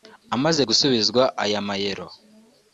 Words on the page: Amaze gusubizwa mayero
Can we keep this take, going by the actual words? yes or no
no